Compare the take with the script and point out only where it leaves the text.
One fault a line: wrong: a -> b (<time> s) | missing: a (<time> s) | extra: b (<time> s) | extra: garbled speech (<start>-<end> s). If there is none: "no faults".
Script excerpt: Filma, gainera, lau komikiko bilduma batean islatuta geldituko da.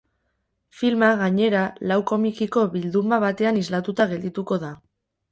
no faults